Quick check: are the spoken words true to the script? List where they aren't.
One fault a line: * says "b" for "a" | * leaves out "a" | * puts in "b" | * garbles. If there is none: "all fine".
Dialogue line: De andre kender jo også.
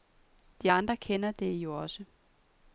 * puts in "det"